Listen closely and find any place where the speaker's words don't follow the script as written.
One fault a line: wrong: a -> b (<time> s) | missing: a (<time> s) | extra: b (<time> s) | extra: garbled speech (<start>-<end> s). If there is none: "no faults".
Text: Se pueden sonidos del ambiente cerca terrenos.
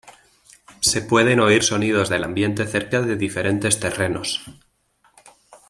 extra: oír (1.4 s)
extra: de diferentes (3.0 s)